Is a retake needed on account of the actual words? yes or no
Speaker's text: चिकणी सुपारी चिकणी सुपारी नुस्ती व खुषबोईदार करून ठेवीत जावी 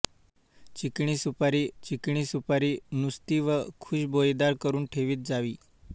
no